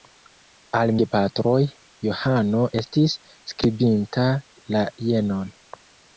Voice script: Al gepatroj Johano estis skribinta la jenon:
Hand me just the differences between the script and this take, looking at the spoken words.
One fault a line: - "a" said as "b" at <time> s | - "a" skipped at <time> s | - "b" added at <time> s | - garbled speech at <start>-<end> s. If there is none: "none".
none